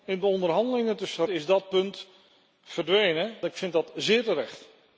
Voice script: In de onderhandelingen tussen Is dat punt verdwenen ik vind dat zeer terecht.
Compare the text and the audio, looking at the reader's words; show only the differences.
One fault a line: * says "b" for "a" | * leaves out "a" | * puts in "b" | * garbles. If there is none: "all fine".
all fine